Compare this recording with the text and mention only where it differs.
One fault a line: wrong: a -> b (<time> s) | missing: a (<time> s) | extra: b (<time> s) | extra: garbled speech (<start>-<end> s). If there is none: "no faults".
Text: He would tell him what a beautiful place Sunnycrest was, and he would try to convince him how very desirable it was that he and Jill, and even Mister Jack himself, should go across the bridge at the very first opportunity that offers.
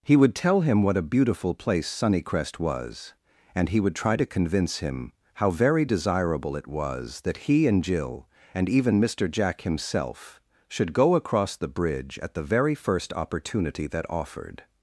wrong: offers -> offered (14.1 s)